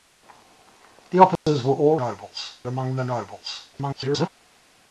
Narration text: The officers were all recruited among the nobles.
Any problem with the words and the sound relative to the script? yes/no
yes